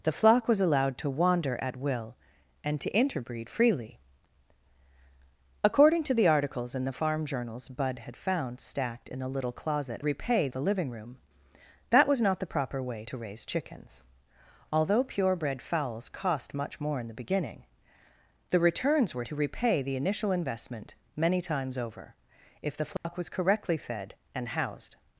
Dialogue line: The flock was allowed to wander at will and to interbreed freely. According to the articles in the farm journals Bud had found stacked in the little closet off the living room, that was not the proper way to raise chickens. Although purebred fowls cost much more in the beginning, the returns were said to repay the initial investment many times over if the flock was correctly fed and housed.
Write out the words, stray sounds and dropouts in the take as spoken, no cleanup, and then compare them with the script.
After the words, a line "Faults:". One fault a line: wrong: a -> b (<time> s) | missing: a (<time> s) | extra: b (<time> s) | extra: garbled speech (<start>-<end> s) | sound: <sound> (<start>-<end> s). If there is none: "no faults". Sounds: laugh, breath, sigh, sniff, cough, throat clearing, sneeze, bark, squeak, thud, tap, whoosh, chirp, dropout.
The flock was allowed to wander at will and to interbreed freely. According to the articles in the farm journals Bud had found stacked in the little closet repay the living room, that was not the proper way to raise chickens. Although purebred fowls cost much more in the beginning, the returns were to repay the initial investment many times over if the flock was correctly fed and housed.
Faults:
wrong: off -> repay (10.0 s)
missing: said (19.2 s)
sound: dropout (23.0-23.0 s)